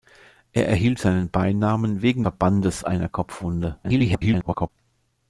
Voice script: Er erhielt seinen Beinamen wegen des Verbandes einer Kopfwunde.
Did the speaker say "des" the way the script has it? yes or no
no